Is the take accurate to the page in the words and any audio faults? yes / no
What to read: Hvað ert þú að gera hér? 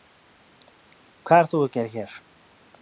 yes